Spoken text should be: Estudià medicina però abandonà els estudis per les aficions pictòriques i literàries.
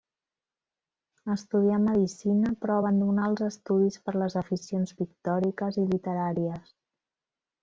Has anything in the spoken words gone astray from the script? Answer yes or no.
no